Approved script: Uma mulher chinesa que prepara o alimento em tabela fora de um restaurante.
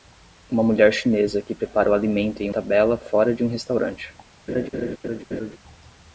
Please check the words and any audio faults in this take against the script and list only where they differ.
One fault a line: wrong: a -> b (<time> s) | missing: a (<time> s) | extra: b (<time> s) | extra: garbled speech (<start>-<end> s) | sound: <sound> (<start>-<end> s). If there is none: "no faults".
sound: laugh (4.5-5.6 s)